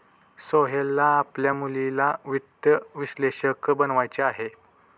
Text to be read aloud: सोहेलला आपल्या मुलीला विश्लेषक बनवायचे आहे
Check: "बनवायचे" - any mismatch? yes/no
no